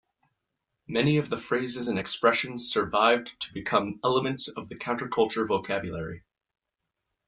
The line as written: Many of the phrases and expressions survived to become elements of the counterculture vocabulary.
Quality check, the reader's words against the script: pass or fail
pass